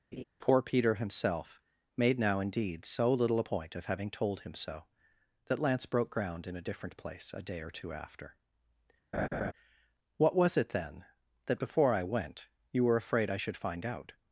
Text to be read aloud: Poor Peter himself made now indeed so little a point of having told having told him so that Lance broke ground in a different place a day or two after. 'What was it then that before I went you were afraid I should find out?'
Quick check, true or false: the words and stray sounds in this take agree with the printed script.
false